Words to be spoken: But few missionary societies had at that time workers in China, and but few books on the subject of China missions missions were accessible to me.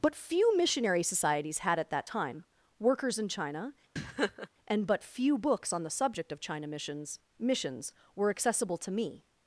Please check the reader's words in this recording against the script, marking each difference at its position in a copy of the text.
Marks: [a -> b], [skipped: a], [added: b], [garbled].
But few missionary societies had at that time workers in China, and but few books on the subject of China missions missions were accessible to me.